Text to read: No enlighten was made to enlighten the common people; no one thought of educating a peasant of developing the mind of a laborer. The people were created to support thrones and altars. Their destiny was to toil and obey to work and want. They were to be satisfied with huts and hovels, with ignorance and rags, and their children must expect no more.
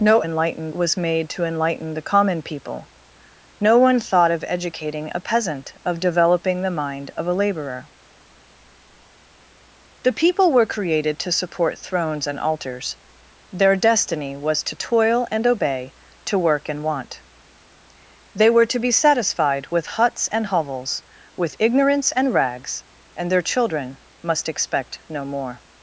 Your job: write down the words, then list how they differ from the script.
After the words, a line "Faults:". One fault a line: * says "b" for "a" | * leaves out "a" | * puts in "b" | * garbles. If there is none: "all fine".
No enlighten was made to enlighten the common people; no one thought of educating a peasant of developing the mind of a laborer. The people were created to support thrones and altars. Their destiny was to toil and obey to work and want. They were to be satisfied with huts and hovels, with ignorance and rags, and their children must expect no more.
Faults:
all fine